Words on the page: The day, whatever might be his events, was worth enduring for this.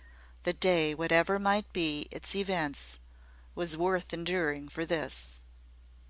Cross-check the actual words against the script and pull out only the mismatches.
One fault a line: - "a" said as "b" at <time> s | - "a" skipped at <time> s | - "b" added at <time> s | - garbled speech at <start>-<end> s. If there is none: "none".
- "his" said as "its" at 2.1 s